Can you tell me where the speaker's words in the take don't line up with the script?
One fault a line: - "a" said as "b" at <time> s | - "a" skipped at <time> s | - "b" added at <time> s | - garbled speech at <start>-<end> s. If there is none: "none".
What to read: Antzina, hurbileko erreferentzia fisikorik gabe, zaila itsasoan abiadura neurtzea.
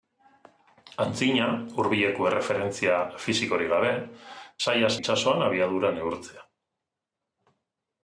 none